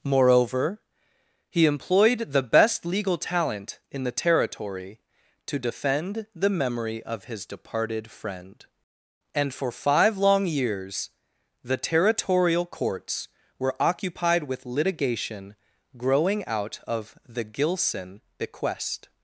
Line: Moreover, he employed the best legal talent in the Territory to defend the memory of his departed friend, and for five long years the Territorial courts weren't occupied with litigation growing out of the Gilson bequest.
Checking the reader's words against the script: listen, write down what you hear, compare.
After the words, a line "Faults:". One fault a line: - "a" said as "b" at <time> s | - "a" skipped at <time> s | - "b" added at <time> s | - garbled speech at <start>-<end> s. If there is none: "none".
Moreover, he employed the best legal talent in the Territory to defend the memory of his departed friend, and for five long years the Territorial courts were occupied with litigation growing out of the Gilson bequest.
Faults:
- "weren't" said as "were" at 13.6 s